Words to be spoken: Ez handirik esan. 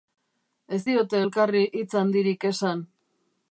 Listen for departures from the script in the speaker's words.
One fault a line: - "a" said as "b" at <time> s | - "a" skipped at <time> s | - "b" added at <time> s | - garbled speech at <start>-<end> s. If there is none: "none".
- "diote elkarri hitz" added at 0.9 s